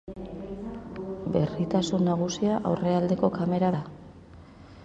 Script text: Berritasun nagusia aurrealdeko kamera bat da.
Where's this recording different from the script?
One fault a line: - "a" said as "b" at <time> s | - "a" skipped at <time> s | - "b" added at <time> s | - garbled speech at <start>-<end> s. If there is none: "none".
- "bat" skipped at 3.7 s